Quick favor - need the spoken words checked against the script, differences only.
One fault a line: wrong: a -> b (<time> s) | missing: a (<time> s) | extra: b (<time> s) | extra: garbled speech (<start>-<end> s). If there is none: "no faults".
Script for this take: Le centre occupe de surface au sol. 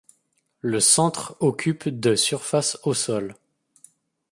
no faults